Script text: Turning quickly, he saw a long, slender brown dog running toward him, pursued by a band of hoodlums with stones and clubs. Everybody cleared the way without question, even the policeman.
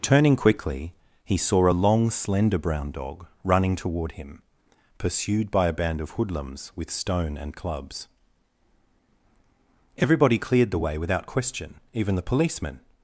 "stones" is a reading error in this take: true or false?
true